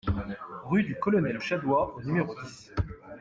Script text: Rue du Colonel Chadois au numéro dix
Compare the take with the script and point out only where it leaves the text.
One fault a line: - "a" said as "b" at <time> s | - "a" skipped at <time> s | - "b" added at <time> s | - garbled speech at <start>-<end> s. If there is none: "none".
none